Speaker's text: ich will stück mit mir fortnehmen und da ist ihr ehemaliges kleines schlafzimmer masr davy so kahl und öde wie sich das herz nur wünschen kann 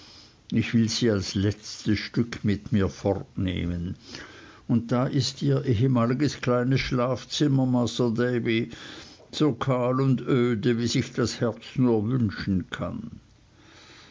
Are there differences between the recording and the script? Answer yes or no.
yes